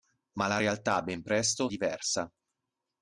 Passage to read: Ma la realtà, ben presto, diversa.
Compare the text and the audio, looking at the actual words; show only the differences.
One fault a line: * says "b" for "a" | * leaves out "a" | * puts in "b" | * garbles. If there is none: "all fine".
all fine